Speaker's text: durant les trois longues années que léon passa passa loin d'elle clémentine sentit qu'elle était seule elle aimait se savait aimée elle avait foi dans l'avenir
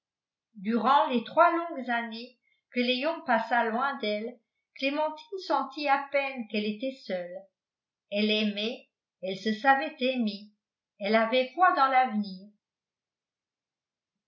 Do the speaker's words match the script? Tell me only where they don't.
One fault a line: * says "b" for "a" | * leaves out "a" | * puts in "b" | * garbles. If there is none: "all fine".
* leaves out "passa"
* puts in "à peine"
* puts in "elle"